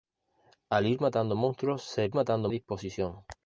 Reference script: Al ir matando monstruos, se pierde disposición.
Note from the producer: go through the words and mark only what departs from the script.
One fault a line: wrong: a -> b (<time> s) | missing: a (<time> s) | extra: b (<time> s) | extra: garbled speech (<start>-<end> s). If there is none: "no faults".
wrong: pierde -> matando (2.1 s)